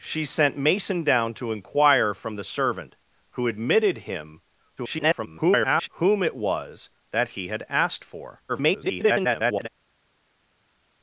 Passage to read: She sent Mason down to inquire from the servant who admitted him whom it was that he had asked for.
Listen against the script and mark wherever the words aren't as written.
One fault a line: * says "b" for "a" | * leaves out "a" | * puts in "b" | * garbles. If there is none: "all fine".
* garbles
* garbles